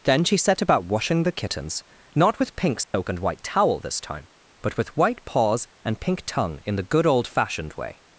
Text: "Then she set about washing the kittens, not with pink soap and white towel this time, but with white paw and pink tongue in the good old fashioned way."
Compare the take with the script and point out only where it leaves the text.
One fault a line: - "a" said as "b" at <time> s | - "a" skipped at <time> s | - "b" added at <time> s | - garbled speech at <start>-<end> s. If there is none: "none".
- "paw" said as "paws" at 5.3 s